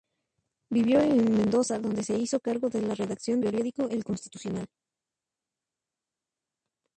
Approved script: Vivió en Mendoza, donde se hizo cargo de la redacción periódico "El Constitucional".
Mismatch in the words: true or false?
false